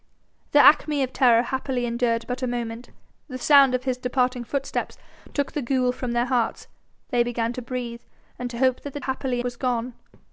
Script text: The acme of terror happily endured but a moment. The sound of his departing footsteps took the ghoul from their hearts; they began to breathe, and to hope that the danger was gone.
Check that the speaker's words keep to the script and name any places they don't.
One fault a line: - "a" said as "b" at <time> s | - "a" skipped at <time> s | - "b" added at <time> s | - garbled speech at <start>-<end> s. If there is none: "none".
- "danger" said as "happily" at 9.0 s